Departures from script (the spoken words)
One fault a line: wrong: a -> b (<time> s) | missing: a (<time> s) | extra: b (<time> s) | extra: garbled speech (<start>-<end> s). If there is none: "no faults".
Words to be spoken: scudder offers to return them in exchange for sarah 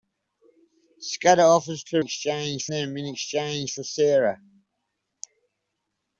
wrong: return -> exchange (2.0 s)